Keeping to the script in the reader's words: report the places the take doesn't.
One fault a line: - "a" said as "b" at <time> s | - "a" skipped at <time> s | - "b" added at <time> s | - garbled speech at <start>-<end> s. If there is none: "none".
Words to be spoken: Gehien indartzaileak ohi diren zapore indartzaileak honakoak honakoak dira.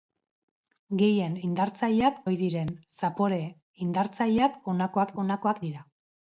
none